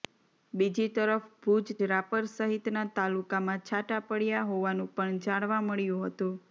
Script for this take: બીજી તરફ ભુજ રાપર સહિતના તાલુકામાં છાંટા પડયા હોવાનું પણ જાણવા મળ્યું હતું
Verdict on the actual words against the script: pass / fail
pass